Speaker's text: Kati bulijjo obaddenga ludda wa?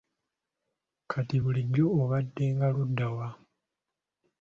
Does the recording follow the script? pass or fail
pass